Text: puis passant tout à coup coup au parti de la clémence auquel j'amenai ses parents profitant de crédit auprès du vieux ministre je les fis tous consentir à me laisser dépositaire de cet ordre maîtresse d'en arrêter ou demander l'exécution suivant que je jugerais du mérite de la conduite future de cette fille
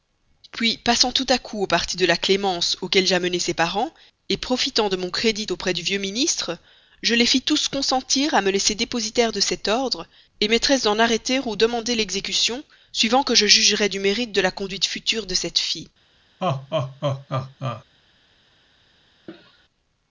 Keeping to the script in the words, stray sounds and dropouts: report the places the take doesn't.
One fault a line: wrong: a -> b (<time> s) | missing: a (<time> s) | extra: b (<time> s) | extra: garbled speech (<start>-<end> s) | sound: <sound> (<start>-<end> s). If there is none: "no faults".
missing: coup (1.6 s)
extra: mon (5.0 s)
sound: laugh (16.4-17.8 s)
sound: cough (19.3-19.6 s)